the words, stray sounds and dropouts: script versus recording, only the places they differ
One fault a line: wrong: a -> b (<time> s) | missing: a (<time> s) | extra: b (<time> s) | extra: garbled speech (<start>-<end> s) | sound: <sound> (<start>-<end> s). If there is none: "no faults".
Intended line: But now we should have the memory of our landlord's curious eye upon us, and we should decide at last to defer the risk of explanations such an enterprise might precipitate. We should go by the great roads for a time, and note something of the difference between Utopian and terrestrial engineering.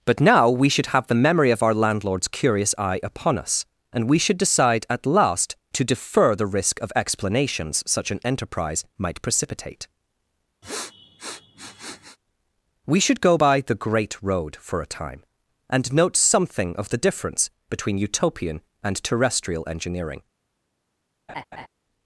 sound: sniff (10.6-12.2 s)
wrong: roads -> road (14.2 s)
sound: laugh (21.3-21.7 s)